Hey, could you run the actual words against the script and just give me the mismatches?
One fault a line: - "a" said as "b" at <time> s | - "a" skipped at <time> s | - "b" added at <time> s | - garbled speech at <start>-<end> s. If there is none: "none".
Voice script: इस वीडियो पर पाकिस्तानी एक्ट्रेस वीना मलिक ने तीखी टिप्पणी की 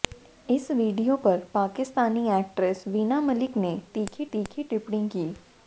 - "तीखी" added at 4.3 s